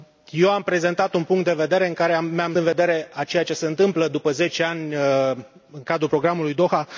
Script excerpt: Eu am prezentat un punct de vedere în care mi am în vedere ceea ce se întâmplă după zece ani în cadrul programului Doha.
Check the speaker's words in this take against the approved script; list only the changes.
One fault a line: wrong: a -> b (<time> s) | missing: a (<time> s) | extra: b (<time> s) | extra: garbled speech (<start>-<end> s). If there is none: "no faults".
no faults